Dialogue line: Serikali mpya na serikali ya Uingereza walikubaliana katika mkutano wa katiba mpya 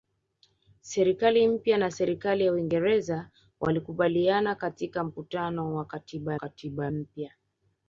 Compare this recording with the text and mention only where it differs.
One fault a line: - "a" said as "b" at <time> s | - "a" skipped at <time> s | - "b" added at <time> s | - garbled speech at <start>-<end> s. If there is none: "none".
- "katiba" added at 6.3 s